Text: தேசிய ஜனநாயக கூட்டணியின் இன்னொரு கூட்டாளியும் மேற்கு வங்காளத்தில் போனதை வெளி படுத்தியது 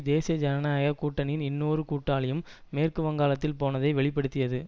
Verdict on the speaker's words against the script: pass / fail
pass